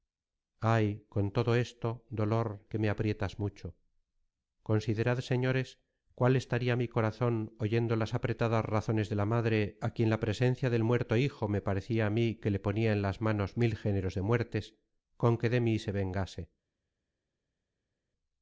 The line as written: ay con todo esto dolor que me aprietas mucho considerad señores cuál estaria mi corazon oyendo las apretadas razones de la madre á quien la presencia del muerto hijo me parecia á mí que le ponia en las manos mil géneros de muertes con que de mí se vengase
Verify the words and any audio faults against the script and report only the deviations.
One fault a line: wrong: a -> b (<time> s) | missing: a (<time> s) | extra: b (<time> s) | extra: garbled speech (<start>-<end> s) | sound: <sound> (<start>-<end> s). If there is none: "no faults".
no faults